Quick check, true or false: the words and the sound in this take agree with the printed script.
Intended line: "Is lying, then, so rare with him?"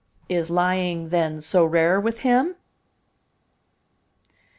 true